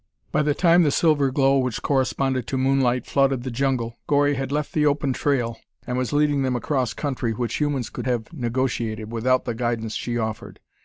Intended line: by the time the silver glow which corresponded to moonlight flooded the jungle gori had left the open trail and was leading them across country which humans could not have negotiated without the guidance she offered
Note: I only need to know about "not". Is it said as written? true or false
false